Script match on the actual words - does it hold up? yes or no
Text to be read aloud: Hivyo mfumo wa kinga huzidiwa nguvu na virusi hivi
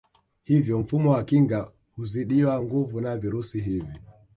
yes